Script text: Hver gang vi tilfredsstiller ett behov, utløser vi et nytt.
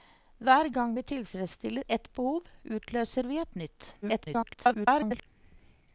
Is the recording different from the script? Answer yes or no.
yes